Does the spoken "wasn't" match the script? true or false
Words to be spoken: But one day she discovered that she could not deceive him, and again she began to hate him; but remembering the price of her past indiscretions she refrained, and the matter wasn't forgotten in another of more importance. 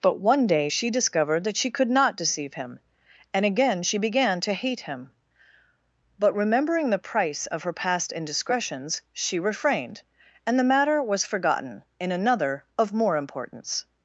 false